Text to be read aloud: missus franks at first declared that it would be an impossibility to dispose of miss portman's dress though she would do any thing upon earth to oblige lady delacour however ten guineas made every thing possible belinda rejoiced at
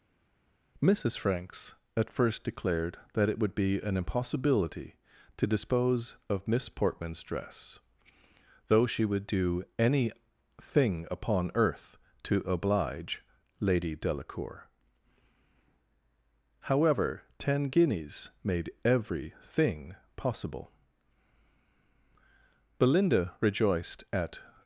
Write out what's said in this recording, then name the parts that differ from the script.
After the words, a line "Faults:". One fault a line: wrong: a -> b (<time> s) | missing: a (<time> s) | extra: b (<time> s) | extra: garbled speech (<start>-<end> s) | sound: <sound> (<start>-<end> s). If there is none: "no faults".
missus franks at first declared that it would be an impossibility to dispose of miss portman's dress though she would do any thing upon earth to oblige lady delacour however ten guineas made every thing possible belinda rejoiced at
Faults:
no faults